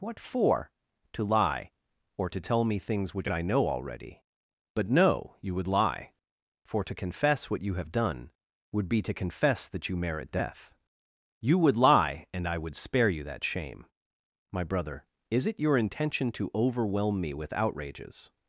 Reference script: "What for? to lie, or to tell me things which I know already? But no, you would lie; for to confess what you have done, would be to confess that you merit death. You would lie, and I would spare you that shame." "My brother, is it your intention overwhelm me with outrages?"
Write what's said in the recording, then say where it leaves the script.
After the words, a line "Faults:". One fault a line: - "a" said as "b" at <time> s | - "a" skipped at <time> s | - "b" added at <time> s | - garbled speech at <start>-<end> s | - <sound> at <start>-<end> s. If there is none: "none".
"What for? to lie, or to tell me things which I know already? But no, you would lie; for to confess what you have done, would be to confess that you merit death. You would lie, and I would spare you that shame." "My brother, is it your intention to overwhelm me with outrages?"
Faults:
- "to" added at 16.3 s